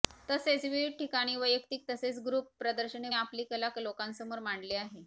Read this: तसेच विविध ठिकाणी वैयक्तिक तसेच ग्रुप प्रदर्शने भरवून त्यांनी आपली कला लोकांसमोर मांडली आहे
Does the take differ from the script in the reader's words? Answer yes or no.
yes